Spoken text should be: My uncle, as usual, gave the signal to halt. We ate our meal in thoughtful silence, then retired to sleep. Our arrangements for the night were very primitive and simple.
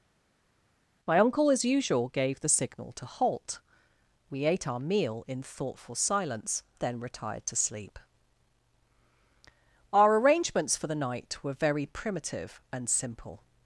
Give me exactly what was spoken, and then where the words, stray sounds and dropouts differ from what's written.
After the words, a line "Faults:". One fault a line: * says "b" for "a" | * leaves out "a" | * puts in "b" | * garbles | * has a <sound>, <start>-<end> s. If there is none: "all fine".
My uncle, as usual, gave the signal to halt. We ate our meal in thoughtful silence, then retired to sleep. Our arrangements for the night were very primitive and simple.
Faults:
all fine